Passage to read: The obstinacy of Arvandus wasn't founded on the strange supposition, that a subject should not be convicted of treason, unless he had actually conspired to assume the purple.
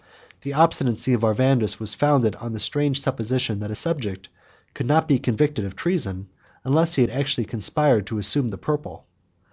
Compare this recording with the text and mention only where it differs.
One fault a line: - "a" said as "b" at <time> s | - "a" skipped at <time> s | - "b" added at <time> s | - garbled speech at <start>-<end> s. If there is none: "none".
- "wasn't" said as "was" at 1.8 s
- "should" said as "could" at 4.7 s